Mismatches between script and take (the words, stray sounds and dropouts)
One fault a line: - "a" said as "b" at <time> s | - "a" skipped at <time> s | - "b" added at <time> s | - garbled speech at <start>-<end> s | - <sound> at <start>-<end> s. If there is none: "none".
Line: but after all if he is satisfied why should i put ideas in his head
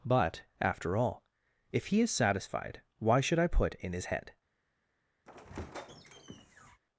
- "ideas" skipped at 3.7 s
- squeak at 5.3-6.8 s